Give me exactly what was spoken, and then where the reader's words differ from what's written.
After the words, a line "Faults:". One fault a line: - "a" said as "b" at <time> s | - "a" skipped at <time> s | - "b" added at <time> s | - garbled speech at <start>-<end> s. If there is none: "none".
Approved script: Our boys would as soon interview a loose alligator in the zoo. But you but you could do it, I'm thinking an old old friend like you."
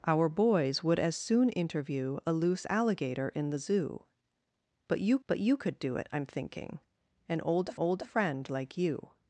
Our boys would as soon interview a loose alligator in the zoo. But you but you could do it, I'm thinking an old old friend like you."
Faults:
none